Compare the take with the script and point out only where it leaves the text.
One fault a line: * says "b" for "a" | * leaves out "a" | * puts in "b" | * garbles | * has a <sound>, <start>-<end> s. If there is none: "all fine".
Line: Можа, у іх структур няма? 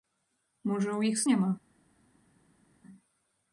* leaves out "структур"